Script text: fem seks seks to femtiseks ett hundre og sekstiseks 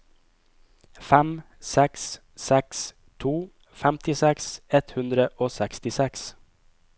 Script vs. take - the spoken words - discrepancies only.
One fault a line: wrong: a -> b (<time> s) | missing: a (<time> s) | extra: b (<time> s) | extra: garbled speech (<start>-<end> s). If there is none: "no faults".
no faults